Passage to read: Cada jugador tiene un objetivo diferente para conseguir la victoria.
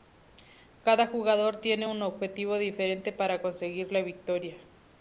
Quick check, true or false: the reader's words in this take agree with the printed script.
true